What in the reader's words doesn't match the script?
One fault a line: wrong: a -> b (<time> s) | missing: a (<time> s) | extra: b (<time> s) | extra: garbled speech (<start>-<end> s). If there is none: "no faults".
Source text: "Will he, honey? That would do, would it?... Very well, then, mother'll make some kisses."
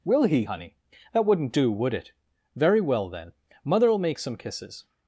wrong: would -> wouldn't (1.2 s)